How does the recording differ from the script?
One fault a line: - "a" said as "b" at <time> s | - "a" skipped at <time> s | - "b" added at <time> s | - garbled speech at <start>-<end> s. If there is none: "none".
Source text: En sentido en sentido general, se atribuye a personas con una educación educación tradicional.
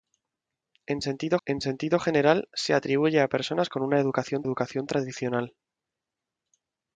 none